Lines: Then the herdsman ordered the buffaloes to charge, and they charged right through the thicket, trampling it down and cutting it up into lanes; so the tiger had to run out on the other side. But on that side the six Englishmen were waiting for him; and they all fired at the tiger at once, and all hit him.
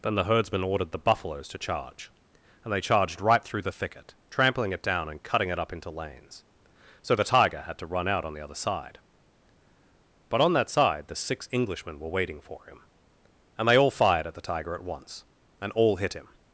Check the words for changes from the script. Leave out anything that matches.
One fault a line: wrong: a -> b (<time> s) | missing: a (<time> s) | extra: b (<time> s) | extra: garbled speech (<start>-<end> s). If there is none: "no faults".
no faults